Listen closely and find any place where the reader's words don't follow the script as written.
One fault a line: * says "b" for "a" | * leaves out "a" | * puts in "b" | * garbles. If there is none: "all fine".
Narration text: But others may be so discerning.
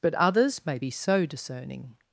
all fine